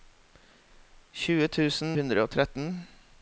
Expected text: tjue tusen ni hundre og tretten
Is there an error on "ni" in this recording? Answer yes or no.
yes